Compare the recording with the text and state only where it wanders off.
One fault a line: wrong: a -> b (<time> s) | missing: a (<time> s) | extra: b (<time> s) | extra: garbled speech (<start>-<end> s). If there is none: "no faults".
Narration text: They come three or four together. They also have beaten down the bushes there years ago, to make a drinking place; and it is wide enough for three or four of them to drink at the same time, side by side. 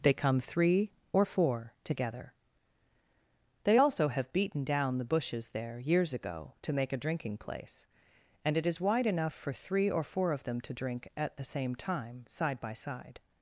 no faults